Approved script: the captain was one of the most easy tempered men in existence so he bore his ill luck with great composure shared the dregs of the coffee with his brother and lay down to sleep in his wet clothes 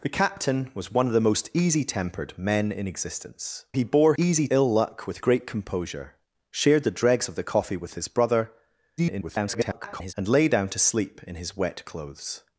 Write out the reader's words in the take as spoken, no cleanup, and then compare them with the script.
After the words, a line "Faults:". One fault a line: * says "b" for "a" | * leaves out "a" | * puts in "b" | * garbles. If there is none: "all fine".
the captain was one of the most easy tempered men in existence he bore easy ill luck with great composure shared the dregs of the coffee with his brother [garbled] and lay down to sleep in his wet clothes
Faults:
* leaves out "so"
* says "easy" for "his"
* garbles